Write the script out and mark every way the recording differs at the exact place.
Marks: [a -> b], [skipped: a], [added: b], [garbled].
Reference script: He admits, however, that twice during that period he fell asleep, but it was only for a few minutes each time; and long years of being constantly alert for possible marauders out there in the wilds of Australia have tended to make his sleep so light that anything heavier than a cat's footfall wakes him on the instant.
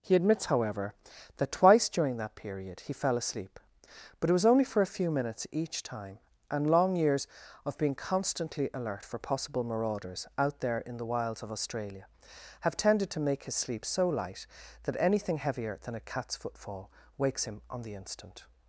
He admits, however, that twice during that period he fell asleep, but it was only for a few minutes each time; and long years of being constantly alert for possible marauders out there in the wilds of Australia have tended to make his sleep so light that anything heavier than a cat's footfall wakes him on the instant.